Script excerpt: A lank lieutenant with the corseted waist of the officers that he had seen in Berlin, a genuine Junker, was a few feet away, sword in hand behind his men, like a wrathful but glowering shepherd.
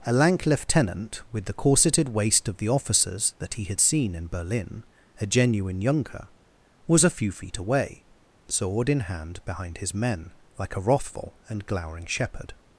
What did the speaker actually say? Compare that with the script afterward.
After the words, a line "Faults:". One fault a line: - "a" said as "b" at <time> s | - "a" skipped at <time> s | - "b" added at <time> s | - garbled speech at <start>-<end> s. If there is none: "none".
A lank lieutenant with the corseted waist of the officers that he had seen in Berlin, a genuine Junker, was a few feet away, sword in hand behind his men, like a wrathful and glowering shepherd.
Faults:
- "but" said as "and" at 11.5 s